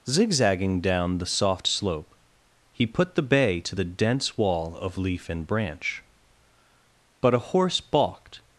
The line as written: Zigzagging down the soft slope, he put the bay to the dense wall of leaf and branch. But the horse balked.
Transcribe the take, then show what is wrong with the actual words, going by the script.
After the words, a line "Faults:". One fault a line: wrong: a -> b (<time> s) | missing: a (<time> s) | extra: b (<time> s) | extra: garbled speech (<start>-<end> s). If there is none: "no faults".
Zigzagging down the soft slope, he put the bay to the dense wall of leaf and branch. But a horse balked.
Faults:
wrong: the -> a (7.3 s)